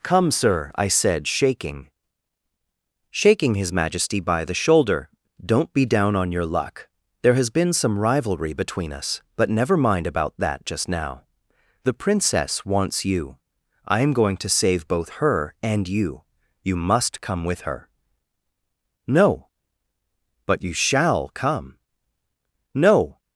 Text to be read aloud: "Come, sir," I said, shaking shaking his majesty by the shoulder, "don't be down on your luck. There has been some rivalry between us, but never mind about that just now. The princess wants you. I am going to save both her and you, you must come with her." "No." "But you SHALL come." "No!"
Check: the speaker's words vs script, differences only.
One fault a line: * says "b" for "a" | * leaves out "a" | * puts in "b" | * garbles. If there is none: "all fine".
all fine